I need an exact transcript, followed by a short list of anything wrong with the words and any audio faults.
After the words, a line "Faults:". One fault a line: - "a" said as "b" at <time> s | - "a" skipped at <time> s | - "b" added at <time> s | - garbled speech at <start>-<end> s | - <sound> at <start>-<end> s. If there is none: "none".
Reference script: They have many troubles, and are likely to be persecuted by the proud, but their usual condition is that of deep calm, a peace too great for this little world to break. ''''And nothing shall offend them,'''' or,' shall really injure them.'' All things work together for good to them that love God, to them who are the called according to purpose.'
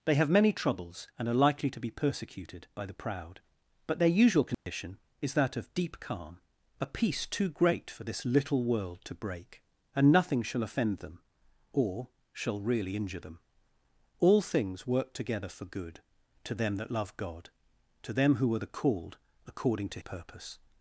They have many troubles, and are likely to be persecuted by the proud, but their usual condition is that of deep calm, a peace too great for this little world to break. ''''And nothing shall offend them,'''' or,' shall really injure them.'' All things work together for good to them that love God, to them who are the called according to purpose.'
Faults:
- dropout at 4.5-4.7 s